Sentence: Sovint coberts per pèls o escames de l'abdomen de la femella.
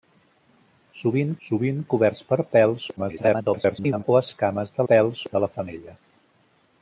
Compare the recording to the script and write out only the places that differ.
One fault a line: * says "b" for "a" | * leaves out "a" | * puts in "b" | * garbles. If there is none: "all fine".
* puts in "sovint"
* garbles
* says "pèls" for "l'abdomen"